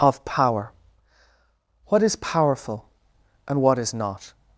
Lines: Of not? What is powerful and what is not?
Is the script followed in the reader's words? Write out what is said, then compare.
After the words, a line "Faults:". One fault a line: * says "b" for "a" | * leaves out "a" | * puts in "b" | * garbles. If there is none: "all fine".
Of power? What is powerful and what is not?
Faults:
* says "power" for "not"